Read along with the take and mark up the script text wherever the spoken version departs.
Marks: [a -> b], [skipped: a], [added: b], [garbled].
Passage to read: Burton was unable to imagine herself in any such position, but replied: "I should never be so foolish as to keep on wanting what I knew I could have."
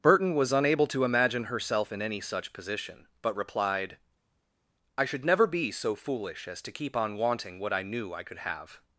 Burton was unable to imagine herself in any such position, but replied: "I should never be so foolish as to keep on wanting what I knew I could have."